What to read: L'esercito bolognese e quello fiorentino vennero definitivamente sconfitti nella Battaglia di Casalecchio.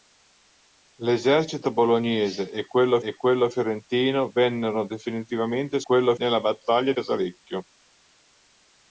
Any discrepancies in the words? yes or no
yes